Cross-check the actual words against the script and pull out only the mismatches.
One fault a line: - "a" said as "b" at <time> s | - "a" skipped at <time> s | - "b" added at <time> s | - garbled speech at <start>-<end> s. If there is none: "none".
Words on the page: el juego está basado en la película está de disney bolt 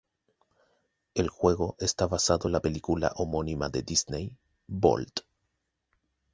- "está" said as "homónima" at 3.1 s